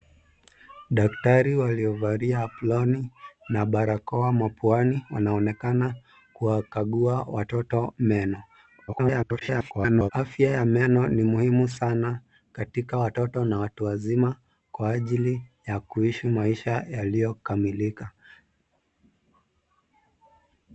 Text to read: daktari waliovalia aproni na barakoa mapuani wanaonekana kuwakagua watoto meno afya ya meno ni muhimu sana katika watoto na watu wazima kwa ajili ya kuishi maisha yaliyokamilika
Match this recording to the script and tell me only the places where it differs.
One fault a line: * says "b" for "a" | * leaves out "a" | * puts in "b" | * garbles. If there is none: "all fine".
* garbles